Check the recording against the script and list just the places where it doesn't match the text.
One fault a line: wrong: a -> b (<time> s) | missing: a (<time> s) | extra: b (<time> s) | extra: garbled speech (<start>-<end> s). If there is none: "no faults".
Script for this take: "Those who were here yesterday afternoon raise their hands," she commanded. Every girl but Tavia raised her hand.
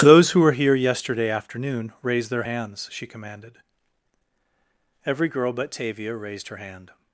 no faults